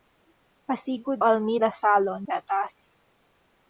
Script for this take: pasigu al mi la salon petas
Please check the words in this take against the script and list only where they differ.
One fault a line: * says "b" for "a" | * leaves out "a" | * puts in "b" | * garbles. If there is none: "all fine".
all fine